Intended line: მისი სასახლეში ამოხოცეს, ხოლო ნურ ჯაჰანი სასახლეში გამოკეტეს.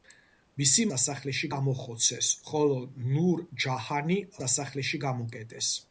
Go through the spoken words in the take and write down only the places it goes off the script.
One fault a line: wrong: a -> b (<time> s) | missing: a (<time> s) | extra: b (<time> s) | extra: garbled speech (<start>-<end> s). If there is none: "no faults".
no faults